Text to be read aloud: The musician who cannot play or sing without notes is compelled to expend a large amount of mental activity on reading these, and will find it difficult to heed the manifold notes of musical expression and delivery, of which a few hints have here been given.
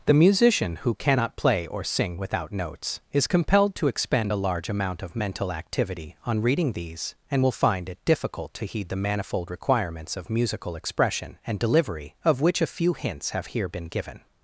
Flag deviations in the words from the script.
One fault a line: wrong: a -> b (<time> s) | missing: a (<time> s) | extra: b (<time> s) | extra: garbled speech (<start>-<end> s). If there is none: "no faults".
wrong: notes -> requirements (9.5 s)